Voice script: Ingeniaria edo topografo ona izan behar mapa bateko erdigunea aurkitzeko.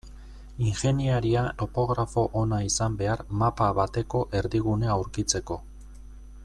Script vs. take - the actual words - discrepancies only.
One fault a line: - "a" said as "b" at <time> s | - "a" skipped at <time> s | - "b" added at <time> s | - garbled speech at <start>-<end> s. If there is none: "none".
- "edo" skipped at 1.4 s